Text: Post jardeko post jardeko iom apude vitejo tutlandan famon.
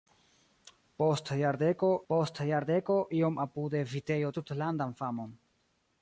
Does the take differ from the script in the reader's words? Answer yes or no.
no